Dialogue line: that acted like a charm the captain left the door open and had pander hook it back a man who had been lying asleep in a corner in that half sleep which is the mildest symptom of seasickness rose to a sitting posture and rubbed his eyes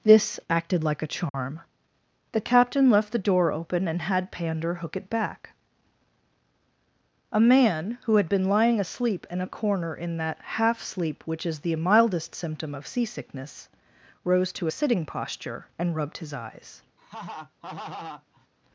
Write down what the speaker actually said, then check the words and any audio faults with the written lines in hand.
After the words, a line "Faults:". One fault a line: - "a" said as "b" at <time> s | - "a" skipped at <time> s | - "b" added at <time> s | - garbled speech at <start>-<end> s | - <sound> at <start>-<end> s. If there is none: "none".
this acted like a charm the captain left the door open and had pander hook it back a man who had been lying asleep in a corner in that half sleep which is the mildest symptom of seasickness rose to a sitting posture and rubbed his eyes
Faults:
- "that" said as "this" at 0.0 s
- dropout at 1.3-1.3 s
- laugh at 17.0-18.5 s